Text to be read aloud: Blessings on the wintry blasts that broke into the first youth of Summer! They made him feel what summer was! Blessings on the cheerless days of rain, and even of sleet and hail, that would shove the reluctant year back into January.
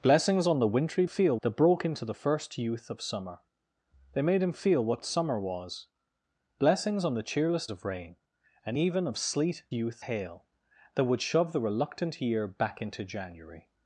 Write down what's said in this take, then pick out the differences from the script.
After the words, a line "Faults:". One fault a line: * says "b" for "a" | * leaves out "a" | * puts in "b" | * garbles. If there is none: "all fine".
Blessings on the wintry feel that broke into the first youth of Summer! They made him feel what summer was! Blessings on the cheerless of rain, and even of sleet youth hail, that would shove the reluctant year back into January.
Faults:
* says "feel" for "blasts"
* leaves out "days"
* says "youth" for "and"